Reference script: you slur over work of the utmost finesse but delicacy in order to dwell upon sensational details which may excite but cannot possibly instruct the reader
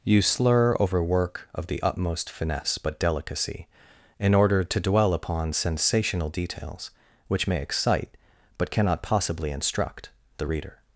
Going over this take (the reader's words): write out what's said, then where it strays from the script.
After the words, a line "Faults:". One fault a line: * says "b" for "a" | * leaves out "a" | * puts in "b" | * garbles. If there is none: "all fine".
you slur over work of the utmost finesse but delicacy in order to dwell upon sensational details which may excite but cannot possibly instruct the reader
Faults:
all fine